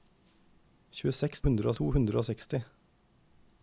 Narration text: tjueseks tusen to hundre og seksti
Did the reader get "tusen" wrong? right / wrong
wrong